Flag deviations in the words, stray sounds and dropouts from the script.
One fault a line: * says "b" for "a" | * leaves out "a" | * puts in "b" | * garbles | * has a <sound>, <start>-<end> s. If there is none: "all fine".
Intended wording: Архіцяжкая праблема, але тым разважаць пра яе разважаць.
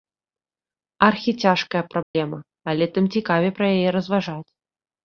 * has a dropout, 2.0-2.1 s
* says "цікавей" for "разважаць"